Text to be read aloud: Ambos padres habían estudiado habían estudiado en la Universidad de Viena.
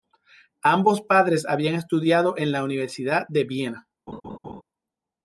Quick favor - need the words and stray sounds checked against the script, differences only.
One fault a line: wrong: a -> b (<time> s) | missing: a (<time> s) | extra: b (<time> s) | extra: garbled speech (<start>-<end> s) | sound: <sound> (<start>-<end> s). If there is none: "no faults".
missing: habían estudiado (2.3 s)
sound: laugh (4.1-4.6 s)